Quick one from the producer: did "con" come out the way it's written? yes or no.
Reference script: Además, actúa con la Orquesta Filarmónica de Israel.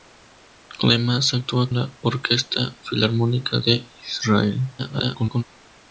no